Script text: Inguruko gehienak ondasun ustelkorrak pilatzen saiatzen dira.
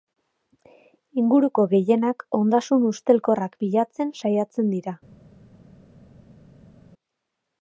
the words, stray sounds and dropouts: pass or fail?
pass